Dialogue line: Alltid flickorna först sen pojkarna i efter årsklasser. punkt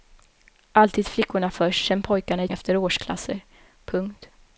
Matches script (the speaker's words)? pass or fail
pass